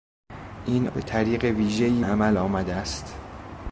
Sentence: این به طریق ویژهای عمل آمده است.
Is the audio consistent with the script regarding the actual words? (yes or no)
yes